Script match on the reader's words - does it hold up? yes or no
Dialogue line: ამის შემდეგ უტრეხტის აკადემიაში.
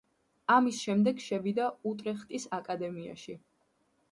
no